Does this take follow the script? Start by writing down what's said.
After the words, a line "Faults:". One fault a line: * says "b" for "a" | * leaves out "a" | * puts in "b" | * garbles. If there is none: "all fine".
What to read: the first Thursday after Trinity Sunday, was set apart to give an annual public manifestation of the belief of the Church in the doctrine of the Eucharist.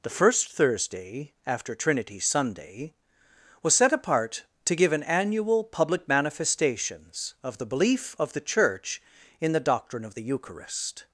the first Thursday after Trinity Sunday, was set apart to give an annual public manifestations of the belief of the Church in the doctrine of the Eucharist.
Faults:
* says "manifestations" for "manifestation"